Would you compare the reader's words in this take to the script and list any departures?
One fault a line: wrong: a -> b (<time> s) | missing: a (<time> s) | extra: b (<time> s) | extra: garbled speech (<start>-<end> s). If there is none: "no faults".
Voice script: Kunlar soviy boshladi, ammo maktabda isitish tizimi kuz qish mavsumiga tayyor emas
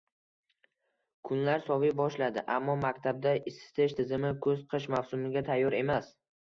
no faults